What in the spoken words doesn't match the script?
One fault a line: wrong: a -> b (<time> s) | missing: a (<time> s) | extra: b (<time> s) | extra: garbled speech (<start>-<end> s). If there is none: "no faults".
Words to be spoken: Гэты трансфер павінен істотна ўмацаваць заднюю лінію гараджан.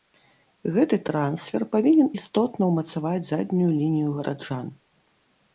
no faults